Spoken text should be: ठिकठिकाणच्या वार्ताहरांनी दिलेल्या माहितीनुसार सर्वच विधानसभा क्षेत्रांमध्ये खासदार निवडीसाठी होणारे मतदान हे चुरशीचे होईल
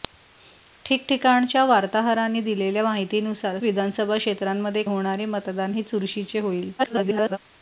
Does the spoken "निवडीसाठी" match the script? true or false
false